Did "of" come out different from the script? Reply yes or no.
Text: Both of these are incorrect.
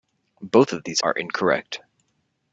no